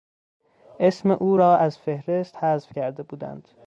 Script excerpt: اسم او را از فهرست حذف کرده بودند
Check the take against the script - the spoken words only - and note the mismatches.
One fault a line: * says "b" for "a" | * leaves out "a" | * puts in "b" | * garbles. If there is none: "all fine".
all fine